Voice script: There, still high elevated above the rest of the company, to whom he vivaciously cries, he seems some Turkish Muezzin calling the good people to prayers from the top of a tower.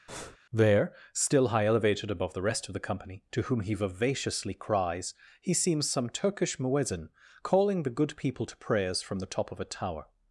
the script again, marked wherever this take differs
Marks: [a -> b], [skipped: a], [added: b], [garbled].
There, still high elevated above the rest of the company, to whom he vivaciously cries, he seems some Turkish Muezzin calling the good people to prayers from the top of a tower.